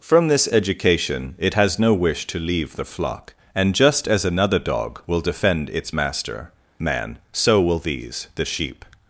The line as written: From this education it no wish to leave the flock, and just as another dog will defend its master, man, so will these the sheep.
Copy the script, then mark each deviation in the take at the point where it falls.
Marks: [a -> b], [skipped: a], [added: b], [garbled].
From this education it [added: has] no wish to leave the flock, and just as another dog will defend its master, man, so will these the sheep.